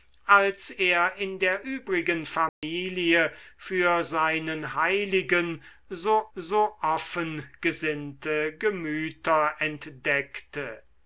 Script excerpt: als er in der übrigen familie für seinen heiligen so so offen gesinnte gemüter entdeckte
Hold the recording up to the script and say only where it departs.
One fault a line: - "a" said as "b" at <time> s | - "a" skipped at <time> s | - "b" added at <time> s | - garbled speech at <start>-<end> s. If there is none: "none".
none